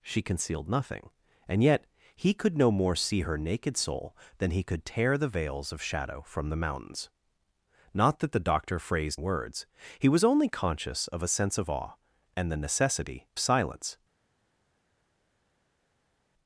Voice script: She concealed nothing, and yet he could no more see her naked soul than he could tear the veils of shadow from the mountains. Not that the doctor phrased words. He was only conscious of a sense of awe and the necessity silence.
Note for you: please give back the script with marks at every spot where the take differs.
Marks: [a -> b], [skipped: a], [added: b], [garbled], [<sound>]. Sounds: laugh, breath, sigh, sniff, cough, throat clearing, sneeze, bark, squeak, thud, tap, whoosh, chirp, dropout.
She concealed nothing, and yet he could no more see her naked soul than he could tear the veils of shadow from the mountains. Not that the doctor phrased words. He was only conscious of a sense of awe and the necessity silence.